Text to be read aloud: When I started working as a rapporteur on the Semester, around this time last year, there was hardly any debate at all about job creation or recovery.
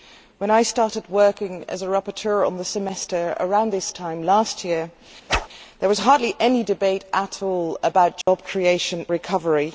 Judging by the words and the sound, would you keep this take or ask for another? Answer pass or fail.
fail